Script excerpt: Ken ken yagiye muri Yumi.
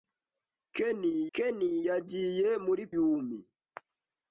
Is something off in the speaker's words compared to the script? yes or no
no